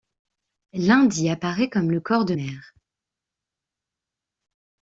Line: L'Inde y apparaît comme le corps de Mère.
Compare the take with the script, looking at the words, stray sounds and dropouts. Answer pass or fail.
pass